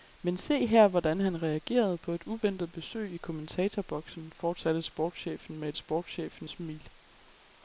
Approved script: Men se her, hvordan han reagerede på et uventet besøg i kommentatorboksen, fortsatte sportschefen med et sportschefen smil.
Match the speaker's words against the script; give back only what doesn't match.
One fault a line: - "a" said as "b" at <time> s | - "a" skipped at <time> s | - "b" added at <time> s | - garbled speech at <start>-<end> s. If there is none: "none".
none